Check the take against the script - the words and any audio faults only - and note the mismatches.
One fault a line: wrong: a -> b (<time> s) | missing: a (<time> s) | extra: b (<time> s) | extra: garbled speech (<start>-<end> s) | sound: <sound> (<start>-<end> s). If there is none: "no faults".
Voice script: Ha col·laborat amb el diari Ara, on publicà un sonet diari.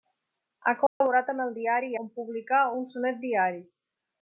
sound: dropout (0.9-1.0 s)
missing: Ara (1.9 s)